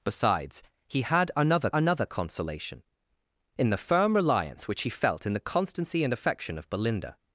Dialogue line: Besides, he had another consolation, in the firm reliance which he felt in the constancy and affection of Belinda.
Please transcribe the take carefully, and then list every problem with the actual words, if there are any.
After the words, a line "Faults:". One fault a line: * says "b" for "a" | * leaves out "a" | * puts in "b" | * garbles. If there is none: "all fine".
Besides, he had another another consolation, in the firm reliance which he felt in the constancy and affection of Belinda.
Faults:
* puts in "another"